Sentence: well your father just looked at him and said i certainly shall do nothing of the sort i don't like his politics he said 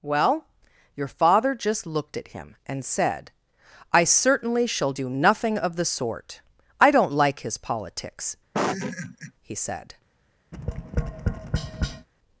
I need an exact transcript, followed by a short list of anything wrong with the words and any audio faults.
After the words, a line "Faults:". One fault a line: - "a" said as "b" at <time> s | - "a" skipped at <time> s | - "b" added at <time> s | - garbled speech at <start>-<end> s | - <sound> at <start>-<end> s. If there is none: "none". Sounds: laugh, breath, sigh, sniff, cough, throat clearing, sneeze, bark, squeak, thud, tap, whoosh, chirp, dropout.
well your father just looked at him and said i certainly shall do nothing of the sort i don't like his politics he said
Faults:
- laugh at 8.5-9.3 s
- tap at 10.5-12.1 s